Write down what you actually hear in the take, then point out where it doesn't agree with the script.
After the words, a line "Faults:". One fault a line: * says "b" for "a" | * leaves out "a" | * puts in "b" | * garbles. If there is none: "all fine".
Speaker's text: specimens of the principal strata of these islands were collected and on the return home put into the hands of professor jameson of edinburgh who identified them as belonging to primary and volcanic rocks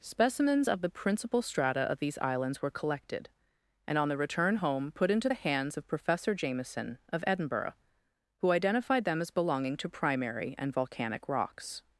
specimens of the principal strata of these islands were collected and on the return home put into the hands of professor jameson of edinburgh who identified them as belonging to primary and volcanic rocks
Faults:
all fine